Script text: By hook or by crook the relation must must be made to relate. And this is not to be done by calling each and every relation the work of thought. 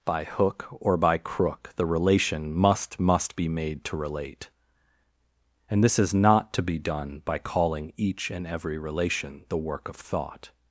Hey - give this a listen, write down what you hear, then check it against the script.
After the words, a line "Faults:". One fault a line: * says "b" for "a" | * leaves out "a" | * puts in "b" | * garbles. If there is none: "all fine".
By hook or by crook the relation must must be made to relate. And this is not to be done by calling each and every relation the work of thought.
Faults:
all fine